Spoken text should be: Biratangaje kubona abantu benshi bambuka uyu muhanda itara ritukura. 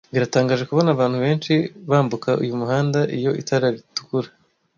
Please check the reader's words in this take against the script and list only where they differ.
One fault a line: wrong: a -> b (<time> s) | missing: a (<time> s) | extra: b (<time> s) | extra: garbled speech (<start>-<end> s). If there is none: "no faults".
extra: iyo (3.2 s)